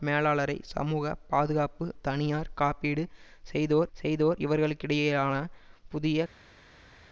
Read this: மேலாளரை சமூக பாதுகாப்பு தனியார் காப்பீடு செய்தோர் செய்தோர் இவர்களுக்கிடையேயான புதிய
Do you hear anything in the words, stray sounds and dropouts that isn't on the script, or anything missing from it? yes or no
no